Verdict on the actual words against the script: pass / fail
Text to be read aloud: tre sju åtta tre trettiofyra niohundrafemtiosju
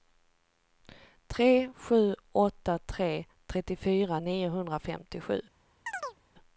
pass